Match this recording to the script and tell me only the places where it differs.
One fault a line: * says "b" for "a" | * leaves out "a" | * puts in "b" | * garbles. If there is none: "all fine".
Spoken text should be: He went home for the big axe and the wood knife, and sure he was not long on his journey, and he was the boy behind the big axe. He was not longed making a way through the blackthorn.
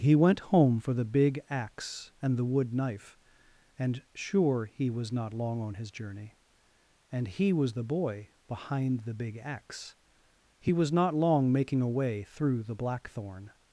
* says "long" for "longed"